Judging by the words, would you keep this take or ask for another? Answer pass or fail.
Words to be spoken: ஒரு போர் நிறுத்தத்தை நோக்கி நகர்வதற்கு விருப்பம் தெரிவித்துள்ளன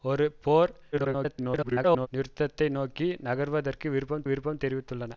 fail